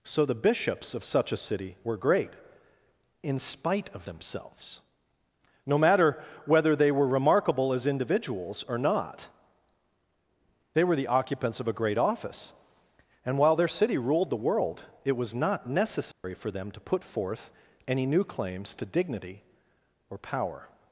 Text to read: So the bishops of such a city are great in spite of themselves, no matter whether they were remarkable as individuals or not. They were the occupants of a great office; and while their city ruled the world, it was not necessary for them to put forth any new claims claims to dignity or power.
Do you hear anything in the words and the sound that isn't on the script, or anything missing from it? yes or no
yes